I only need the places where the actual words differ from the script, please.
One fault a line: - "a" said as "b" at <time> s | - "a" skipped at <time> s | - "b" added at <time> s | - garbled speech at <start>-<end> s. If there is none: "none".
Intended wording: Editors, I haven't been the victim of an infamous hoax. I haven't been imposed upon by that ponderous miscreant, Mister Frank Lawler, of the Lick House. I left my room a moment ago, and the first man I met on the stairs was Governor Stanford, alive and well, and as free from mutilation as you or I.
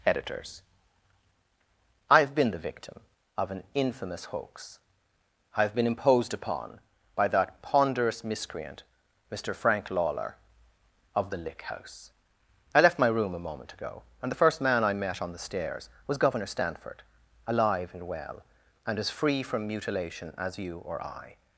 - "haven't" said as "have" at 2.2 s
- "haven't" said as "have" at 5.6 s